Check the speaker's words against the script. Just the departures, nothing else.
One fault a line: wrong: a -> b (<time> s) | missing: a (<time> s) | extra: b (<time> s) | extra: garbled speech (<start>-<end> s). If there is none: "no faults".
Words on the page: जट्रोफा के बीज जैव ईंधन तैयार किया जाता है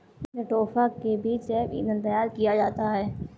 no faults